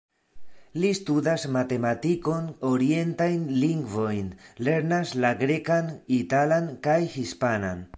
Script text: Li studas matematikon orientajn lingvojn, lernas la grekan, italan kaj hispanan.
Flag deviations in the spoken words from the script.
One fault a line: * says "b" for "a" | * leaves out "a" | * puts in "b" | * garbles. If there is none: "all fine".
all fine